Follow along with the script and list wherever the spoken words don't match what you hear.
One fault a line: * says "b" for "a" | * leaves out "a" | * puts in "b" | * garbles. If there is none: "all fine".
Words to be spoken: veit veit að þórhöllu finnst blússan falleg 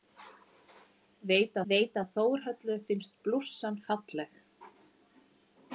all fine